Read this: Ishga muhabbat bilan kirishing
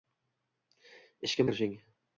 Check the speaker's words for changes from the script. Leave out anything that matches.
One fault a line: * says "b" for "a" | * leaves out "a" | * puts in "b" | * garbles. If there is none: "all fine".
* leaves out "muhabbat bilan"